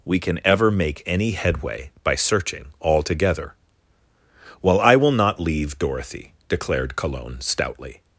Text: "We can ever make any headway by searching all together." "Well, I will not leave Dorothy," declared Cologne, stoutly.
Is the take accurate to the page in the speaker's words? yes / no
yes